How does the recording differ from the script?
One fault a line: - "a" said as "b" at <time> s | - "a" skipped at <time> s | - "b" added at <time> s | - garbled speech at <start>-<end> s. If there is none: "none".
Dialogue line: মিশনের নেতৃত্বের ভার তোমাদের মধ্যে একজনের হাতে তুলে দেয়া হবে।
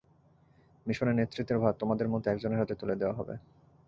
none